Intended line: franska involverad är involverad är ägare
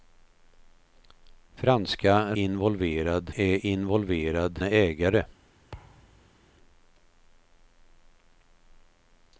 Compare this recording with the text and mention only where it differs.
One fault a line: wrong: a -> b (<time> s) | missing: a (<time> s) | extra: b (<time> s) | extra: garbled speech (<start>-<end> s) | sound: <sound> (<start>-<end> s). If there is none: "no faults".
sound: thud (5.7-6.4 s)